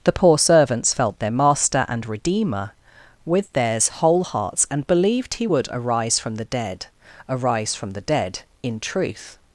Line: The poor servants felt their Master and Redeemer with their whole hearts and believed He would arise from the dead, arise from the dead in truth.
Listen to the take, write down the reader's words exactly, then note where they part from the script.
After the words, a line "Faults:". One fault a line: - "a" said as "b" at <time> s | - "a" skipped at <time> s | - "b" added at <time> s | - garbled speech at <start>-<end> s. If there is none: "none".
The poor servants felt their Master and Redeemer with theirs whole hearts and believed He would arise from the dead, arise from the dead in truth.
Faults:
- "their" said as "theirs" at 3.5 s